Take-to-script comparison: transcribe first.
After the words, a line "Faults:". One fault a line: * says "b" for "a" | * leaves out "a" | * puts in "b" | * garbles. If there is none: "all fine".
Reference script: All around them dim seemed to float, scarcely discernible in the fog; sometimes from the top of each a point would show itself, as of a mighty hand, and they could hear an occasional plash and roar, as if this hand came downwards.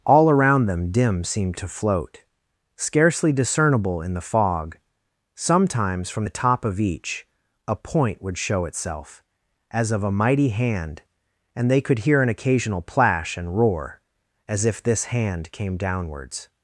All around them dim seemed to float, scarcely discernible in the fog; sometimes from the top of each a point would show itself, as of a mighty hand, and they could hear an occasional plash and roar, as if this hand came downwards.
Faults:
all fine